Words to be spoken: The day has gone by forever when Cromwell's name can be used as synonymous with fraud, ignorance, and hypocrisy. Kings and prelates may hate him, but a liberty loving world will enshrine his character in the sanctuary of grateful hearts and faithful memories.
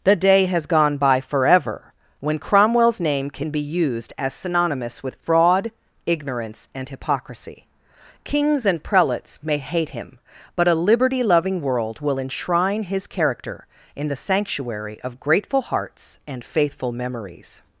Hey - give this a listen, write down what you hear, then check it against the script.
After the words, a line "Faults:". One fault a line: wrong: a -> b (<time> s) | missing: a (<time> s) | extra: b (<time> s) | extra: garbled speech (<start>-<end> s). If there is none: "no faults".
The day has gone by forever when Cromwell's name can be used as synonymous with fraud, ignorance, and hypocrisy. Kings and prelates may hate him, but a liberty loving world will enshrine his character in the sanctuary of grateful hearts and faithful memories.
Faults:
no faults